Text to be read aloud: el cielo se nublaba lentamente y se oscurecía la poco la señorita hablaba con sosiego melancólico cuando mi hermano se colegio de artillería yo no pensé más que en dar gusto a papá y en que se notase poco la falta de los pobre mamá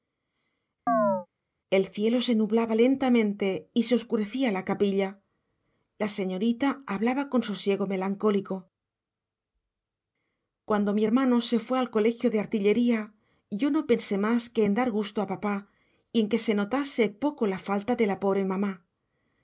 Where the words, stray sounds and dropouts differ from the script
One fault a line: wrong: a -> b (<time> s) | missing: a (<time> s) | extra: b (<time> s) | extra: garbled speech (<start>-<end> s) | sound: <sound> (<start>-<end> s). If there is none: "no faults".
sound: chirp (0.9-1.3 s)
wrong: poco -> capilla (4.6 s)
extra: fue al (11.6 s)
wrong: los -> la (18.1 s)